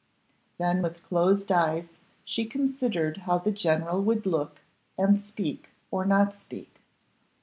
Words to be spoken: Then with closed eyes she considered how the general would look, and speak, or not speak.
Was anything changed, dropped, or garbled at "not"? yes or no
no